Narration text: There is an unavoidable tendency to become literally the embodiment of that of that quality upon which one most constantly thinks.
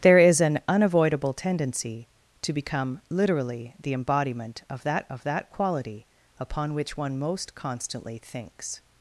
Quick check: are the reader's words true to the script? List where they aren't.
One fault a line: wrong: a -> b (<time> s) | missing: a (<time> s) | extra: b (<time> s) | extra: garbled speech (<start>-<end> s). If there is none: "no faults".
no faults